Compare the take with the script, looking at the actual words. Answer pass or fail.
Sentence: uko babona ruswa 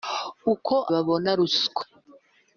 pass